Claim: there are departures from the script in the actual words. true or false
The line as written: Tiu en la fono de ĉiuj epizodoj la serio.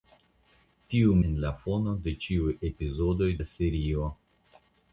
false